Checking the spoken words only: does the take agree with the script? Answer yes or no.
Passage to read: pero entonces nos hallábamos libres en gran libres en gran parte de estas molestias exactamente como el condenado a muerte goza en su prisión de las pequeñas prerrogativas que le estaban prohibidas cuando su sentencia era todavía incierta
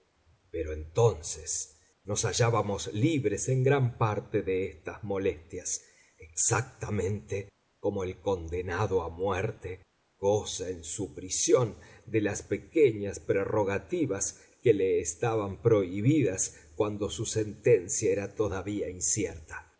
no